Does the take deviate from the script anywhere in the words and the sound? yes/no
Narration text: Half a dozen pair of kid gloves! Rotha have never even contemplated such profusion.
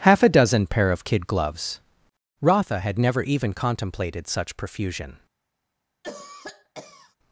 yes